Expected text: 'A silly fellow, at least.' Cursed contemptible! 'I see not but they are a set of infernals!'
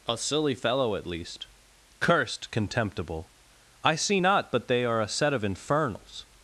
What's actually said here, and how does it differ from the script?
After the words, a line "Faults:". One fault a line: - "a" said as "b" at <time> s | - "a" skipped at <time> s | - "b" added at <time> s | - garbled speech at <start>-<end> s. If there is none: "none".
'A silly fellow, at least.' Cursed contemptible! 'I see not but they are a set of infernals!'
Faults:
none